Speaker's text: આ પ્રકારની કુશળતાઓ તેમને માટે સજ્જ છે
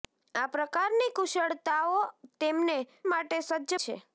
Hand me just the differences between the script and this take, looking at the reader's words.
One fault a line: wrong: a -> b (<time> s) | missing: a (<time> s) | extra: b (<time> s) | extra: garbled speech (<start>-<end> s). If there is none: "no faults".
no faults